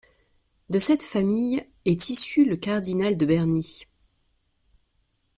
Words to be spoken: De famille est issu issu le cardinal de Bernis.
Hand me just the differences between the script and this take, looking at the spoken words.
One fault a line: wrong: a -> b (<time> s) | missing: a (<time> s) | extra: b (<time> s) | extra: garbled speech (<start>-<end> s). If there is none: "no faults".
extra: cette (0.8 s)
missing: issu (2.4 s)